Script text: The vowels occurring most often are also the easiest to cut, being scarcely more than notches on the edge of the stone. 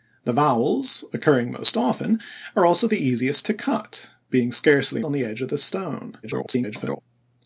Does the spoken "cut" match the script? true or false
true